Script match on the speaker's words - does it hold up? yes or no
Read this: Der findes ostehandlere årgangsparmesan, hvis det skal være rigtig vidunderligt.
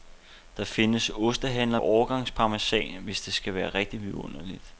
yes